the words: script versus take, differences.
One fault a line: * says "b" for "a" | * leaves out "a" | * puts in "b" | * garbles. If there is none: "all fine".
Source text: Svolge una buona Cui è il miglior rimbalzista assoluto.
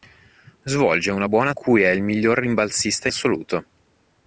all fine